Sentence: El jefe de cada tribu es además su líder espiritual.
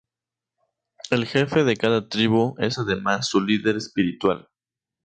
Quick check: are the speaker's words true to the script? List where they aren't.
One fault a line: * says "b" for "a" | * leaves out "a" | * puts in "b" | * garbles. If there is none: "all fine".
all fine